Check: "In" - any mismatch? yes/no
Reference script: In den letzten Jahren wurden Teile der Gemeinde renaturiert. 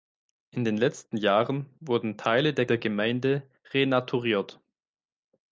no